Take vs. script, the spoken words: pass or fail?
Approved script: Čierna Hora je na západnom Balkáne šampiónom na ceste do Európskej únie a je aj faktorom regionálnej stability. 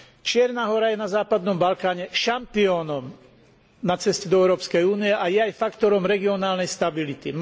pass